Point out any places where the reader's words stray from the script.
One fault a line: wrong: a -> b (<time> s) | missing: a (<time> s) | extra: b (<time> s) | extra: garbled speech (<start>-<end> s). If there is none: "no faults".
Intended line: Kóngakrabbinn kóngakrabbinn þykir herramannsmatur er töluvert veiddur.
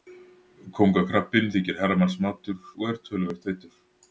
missing: kóngakrabbinn (1.5 s)
extra: og (2.8 s)